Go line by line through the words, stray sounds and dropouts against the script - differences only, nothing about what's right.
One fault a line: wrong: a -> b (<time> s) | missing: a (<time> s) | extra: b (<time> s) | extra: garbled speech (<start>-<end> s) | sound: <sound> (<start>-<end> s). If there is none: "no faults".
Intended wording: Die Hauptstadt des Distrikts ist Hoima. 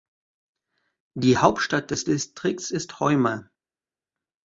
no faults